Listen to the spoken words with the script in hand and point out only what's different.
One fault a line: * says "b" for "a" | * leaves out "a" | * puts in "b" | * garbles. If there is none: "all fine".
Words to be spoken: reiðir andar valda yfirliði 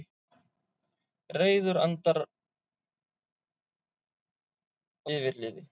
* leaves out "valda"